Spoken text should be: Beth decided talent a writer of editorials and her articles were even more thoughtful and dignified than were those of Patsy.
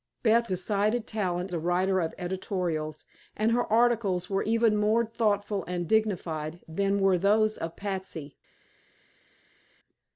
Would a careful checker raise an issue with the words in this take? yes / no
no